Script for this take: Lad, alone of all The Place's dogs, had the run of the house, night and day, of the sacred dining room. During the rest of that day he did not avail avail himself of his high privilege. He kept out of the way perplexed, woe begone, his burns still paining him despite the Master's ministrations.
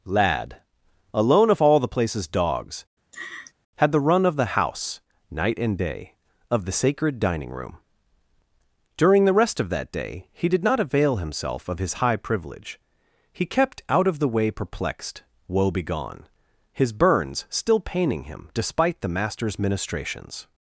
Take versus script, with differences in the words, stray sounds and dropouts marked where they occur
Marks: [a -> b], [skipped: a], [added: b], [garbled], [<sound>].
Lad, alone of all The Place's dogs, [laugh] had the run of the house, night and day, of the sacred dining room. During the rest of that day he did not avail [skipped: avail] himself of his high privilege. He kept out of the way perplexed, woe begone, his burns still paining him despite the Master's ministrations.